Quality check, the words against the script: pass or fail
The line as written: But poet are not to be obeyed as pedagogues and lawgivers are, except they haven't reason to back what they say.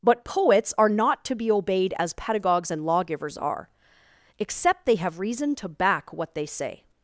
fail